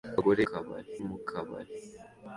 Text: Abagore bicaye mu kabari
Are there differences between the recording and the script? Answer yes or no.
yes